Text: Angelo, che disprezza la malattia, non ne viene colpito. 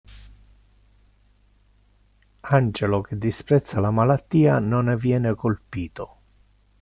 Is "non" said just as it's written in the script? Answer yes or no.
yes